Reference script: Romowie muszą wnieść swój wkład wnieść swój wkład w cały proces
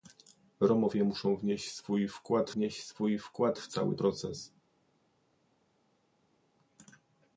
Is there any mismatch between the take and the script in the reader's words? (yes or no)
no